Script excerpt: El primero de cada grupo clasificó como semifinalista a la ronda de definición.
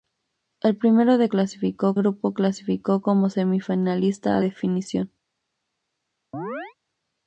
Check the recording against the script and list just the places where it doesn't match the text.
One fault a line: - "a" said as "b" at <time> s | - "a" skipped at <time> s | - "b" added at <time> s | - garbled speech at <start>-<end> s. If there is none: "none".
- "cada" said as "clasificó" at 1.3 s
- "la ronda de" skipped at 4.4 s